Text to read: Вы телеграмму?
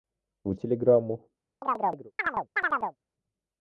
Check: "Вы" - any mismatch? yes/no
no